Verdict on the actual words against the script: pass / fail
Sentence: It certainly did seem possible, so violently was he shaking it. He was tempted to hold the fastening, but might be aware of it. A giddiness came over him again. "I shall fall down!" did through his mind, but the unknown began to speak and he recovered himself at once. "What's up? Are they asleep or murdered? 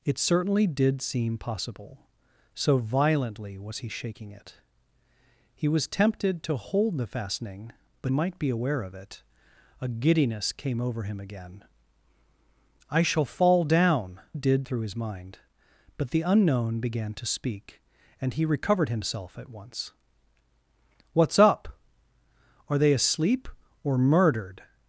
pass